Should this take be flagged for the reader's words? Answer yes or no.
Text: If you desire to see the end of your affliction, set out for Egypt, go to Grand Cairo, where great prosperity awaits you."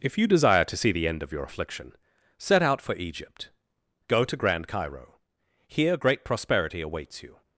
yes